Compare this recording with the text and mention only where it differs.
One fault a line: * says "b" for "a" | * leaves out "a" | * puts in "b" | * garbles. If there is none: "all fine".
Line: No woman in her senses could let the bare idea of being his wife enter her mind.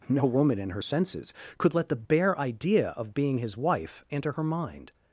all fine